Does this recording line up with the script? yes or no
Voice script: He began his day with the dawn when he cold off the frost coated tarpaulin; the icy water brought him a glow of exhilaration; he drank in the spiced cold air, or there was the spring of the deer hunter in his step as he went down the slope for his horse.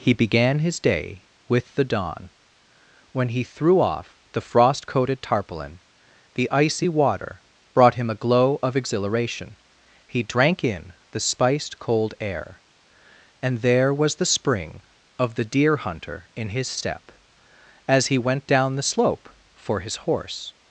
no